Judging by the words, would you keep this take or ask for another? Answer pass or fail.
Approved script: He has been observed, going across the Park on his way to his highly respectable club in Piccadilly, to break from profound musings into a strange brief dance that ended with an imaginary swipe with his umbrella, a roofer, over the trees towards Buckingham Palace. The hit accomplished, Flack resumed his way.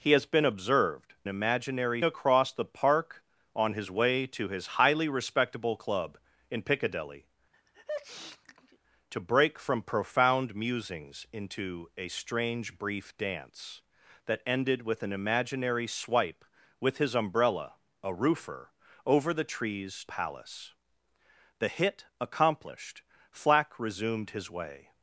fail